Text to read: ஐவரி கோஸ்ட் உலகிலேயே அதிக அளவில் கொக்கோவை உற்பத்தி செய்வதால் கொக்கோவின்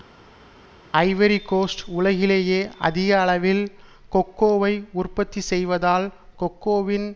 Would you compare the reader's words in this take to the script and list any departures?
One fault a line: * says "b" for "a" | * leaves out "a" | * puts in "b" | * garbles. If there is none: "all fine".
all fine